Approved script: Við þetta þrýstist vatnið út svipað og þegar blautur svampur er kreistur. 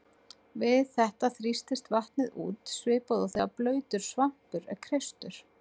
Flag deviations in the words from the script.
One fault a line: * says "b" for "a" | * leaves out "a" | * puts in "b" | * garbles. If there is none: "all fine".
all fine